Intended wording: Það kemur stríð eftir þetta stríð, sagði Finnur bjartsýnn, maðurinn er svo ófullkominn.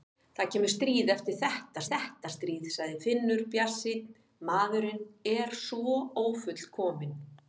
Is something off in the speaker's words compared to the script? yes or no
yes